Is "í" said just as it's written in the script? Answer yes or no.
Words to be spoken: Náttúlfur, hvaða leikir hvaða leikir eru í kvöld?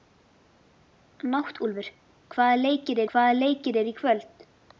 yes